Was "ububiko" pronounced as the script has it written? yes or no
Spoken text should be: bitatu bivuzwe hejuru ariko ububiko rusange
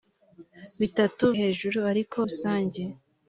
no